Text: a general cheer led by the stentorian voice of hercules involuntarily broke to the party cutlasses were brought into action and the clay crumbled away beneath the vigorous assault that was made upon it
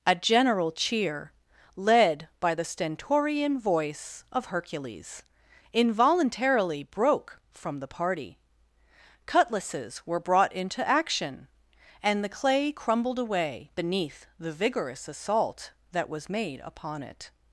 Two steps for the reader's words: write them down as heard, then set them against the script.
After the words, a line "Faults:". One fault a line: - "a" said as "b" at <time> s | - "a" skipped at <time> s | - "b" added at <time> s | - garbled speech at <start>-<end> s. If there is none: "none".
a general cheer led by the stentorian voice of hercules involuntarily broke from the party cutlasses were brought into action and the clay crumbled away beneath the vigorous assault that was made upon it
Faults:
- "to" said as "from" at 7.5 s